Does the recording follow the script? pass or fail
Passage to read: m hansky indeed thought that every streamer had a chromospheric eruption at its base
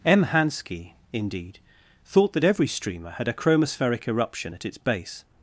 pass